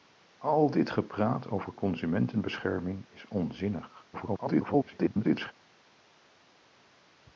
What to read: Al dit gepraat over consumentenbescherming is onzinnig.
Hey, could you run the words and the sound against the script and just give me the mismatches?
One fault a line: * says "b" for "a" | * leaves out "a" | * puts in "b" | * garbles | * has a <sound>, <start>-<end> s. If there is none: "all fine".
* garbles